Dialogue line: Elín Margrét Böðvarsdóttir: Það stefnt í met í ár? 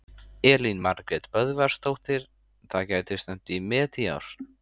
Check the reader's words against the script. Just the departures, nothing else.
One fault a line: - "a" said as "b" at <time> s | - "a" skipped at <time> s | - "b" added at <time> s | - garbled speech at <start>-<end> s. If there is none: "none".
- "gæti" added at 2.9 s